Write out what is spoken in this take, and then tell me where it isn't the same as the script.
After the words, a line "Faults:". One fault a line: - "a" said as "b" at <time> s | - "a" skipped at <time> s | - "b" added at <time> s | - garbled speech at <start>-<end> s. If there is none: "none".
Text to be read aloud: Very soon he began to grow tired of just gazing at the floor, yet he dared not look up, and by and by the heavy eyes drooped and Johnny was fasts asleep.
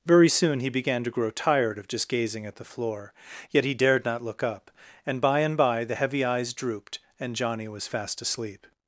Very soon he began to grow tired of just gazing at the floor, yet he dared not look up, and by and by the heavy eyes drooped and Johnny was fast asleep.
Faults:
- "fasts" said as "fast" at 7.9 s